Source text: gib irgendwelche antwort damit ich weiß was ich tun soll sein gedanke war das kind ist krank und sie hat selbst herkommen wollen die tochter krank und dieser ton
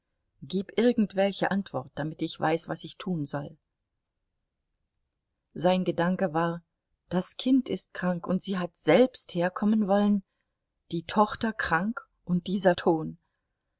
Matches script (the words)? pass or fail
pass